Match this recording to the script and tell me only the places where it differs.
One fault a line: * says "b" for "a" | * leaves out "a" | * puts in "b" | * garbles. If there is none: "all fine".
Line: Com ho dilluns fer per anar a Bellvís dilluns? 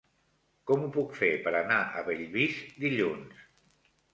* says "puc" for "dilluns"